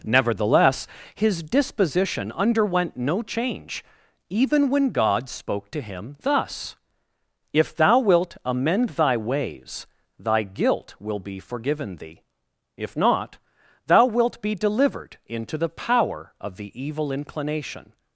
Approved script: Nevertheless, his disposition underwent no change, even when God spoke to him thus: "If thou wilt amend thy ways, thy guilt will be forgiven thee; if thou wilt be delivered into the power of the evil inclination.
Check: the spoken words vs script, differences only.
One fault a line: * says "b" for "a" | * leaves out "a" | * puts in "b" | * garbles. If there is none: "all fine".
* puts in "not"